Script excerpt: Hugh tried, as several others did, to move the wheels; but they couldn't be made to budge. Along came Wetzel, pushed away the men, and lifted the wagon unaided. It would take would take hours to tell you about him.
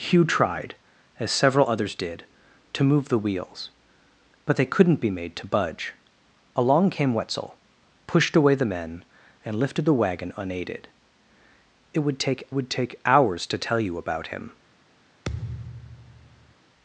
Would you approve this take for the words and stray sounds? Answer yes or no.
no